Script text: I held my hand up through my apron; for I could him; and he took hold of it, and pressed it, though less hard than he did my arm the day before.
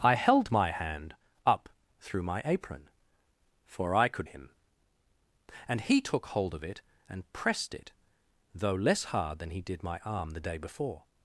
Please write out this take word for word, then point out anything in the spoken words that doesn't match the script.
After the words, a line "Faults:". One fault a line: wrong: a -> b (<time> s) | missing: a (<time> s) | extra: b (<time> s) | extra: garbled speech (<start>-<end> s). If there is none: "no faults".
I held my hand up through my apron; for I could him; and he took hold of it, and pressed it, though less hard than he did my arm the day before.
Faults:
no faults